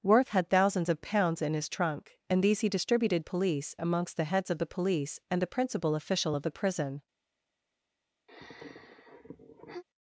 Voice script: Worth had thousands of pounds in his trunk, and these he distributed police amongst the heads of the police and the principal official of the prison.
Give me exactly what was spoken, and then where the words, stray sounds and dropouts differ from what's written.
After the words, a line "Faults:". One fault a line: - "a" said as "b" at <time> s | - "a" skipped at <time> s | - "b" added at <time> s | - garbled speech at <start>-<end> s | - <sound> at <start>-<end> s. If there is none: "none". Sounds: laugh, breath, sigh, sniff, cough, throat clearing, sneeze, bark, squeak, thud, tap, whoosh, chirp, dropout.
Worth had thousands of pounds in his trunk, and these he distributed police amongst the heads of the police and the principal official of the prison.
Faults:
- sigh at 8.3-9.8 s